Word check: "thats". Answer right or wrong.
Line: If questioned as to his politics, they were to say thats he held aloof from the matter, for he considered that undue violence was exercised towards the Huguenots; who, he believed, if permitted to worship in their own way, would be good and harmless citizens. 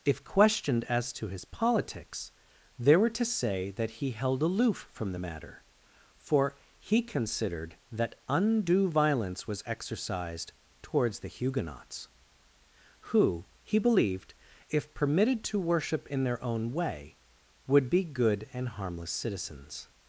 wrong